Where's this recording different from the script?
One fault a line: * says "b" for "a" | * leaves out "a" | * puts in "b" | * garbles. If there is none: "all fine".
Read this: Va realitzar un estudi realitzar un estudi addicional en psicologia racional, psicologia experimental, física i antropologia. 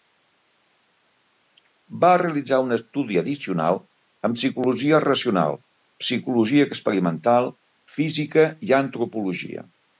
* leaves out "realitzar un estudi"